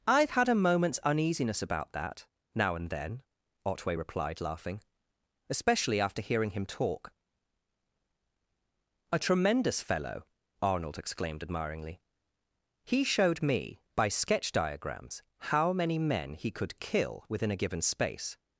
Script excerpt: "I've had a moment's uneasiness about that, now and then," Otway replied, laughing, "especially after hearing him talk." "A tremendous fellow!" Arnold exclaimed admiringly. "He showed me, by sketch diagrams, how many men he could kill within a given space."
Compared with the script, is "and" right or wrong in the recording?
right